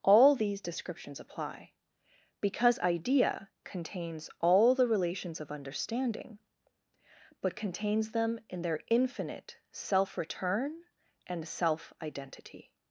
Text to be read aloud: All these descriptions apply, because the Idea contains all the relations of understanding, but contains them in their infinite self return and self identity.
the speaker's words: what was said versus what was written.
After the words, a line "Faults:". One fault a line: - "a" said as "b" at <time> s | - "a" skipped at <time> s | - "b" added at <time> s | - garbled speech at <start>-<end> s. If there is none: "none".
All these descriptions apply, because Idea contains all the relations of understanding, but contains them in their infinite self return and self identity.
Faults:
- "the" skipped at 2.8 s